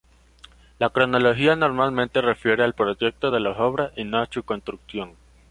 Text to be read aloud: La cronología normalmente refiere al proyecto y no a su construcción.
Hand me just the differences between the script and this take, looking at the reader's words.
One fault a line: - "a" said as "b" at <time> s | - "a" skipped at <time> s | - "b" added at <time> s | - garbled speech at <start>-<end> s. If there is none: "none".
- "de las obras" added at 3.3 s